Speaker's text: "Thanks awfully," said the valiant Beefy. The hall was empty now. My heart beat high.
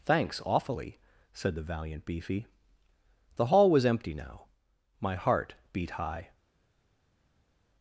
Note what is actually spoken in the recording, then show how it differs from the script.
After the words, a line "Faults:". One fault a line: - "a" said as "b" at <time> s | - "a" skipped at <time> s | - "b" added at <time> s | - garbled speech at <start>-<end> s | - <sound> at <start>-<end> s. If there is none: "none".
"Thanks awfully," said the valiant Beefy. The hall was empty now. My heart beat high.
Faults:
none